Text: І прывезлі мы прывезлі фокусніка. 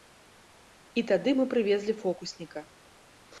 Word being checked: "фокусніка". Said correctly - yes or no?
yes